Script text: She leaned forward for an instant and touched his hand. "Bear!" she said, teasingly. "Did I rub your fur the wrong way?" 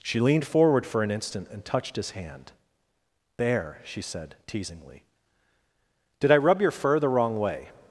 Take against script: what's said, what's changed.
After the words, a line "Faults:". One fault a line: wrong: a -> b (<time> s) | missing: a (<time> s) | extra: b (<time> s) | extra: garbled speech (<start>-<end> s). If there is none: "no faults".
She leaned forward for an instant and touched his hand. "There!" she said, teasingly. "Did I rub your fur the wrong way?"
Faults:
wrong: Bear -> There (3.4 s)